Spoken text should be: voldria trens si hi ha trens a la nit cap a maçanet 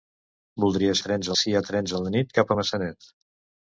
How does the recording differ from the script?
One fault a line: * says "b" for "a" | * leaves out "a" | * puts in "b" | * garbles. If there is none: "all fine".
all fine